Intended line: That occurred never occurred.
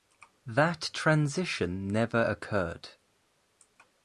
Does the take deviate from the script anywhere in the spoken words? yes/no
yes